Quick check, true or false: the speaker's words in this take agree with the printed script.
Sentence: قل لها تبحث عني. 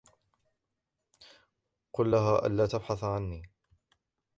false